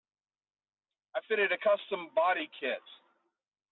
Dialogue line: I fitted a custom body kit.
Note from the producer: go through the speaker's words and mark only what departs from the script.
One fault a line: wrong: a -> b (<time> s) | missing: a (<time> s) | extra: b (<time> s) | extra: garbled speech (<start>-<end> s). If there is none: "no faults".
no faults